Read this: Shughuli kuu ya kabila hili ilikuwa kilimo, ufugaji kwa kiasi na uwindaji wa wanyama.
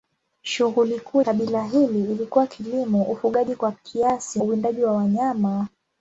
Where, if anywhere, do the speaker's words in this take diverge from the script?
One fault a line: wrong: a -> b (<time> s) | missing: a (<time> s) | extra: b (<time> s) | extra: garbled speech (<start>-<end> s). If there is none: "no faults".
missing: ya (1.2 s)
missing: na (4.4 s)